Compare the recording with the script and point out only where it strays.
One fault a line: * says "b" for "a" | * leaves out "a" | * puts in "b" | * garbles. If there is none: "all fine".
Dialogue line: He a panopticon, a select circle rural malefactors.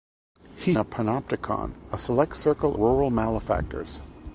all fine